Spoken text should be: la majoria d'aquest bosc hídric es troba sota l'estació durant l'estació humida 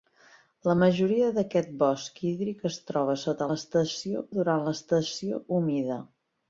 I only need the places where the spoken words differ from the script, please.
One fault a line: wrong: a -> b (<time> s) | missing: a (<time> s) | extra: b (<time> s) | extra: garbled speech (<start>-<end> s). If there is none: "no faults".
no faults